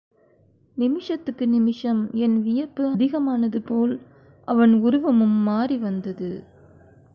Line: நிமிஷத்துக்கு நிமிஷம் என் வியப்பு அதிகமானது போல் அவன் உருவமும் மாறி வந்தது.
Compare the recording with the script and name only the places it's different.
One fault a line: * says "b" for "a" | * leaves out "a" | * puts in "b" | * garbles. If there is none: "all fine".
all fine